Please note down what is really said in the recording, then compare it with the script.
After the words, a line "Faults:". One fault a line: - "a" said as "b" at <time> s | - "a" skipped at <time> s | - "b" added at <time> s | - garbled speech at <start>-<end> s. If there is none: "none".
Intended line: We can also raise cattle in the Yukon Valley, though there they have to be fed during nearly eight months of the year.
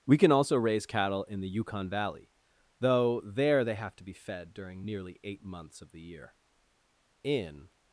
We can also raise cattle in the Yukon Valley, though there they have to be fed during nearly eight months of the year. In
Faults:
- "In" added at 7.2 s